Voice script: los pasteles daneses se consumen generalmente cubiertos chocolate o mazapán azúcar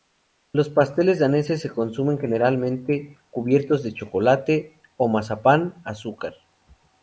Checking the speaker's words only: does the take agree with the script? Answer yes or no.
no